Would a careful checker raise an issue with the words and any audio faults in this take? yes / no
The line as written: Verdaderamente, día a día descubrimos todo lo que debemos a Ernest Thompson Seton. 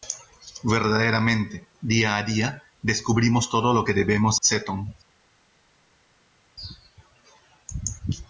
yes